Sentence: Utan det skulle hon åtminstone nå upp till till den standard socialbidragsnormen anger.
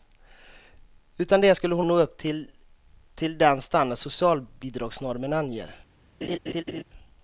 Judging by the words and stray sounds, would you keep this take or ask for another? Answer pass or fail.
fail